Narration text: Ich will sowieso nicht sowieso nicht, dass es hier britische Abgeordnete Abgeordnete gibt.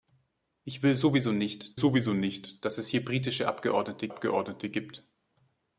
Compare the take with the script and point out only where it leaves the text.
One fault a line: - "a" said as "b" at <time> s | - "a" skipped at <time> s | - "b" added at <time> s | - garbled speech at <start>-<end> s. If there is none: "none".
none